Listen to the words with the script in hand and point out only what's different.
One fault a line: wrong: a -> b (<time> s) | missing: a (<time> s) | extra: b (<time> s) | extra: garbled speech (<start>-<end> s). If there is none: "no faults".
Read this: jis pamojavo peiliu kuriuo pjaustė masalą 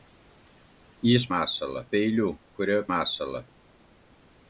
wrong: pamojavo -> masalą (1.3 s)
missing: pjaustė (2.9 s)